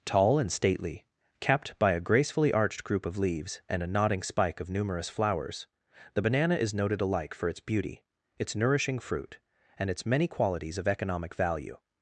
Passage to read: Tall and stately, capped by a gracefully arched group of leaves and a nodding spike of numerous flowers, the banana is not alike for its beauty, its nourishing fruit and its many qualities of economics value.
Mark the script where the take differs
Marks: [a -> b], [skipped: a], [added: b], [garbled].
Tall and stately, capped by a gracefully arched group of leaves and a nodding spike of numerous flowers, the banana is [not -> noted] alike for its beauty, its nourishing fruit and its many qualities of [economics -> economic] value.